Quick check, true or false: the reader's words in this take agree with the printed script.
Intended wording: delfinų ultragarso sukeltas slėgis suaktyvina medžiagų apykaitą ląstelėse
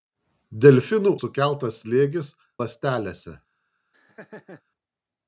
false